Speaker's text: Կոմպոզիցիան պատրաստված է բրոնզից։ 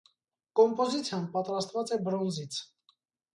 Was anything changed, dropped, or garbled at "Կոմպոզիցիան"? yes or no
no